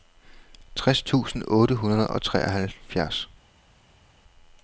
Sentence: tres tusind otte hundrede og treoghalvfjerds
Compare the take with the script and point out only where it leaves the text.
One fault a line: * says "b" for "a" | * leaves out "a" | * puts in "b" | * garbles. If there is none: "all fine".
all fine